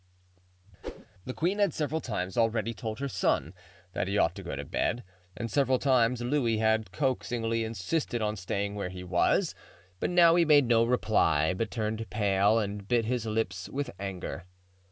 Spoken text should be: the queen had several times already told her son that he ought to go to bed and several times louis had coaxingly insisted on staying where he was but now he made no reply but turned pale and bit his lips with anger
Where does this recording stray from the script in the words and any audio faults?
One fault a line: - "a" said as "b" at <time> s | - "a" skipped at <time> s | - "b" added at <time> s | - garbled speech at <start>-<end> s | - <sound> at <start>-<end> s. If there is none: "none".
- whoosh at 0.8-1.1 s